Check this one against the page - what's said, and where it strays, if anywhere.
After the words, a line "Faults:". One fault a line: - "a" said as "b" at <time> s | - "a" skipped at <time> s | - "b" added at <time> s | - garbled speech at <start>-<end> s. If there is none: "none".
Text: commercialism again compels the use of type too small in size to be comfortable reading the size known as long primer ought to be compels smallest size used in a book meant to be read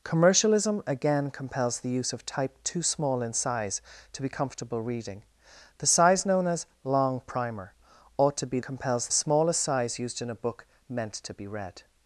commercialism again compels the use of type too small in size to be comfortable reading the size known as long primer ought to be compels smallest size used in a book meant to be read
Faults:
none